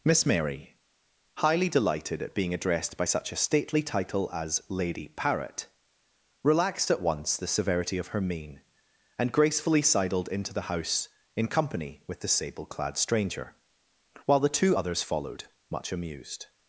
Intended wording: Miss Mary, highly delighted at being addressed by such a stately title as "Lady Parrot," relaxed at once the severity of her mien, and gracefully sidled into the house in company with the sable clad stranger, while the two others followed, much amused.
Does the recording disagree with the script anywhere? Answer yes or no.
no